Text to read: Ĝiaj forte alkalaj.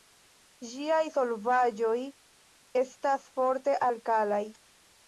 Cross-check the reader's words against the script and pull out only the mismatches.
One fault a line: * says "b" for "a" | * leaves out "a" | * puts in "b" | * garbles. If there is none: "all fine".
* puts in "solvaĵoj estas"